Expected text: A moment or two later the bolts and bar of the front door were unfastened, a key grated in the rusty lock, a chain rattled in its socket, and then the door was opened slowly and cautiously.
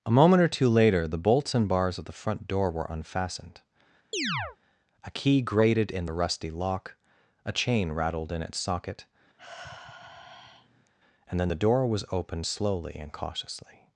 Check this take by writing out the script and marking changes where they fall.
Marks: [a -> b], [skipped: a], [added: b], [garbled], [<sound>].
A moment or two later the bolts and [bar -> bars] of the front door were unfastened, [chirp] a key grated in the rusty lock, a chain rattled in its socket, [sigh] and then the door was opened slowly and cautiously.